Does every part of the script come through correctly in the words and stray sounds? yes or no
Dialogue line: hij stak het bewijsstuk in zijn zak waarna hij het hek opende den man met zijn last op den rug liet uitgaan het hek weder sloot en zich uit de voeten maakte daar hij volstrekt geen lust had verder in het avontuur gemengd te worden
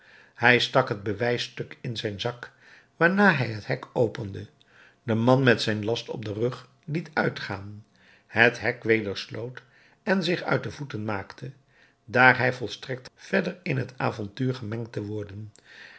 no